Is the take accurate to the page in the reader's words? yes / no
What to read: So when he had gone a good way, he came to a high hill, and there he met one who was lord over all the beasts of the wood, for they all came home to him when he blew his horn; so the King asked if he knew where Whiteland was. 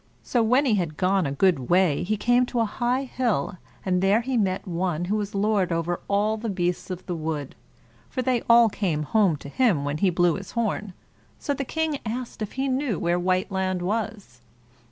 yes